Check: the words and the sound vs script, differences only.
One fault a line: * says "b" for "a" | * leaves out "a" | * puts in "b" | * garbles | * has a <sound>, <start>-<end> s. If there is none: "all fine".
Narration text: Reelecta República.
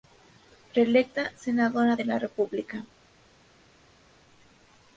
* puts in "Senadora de la"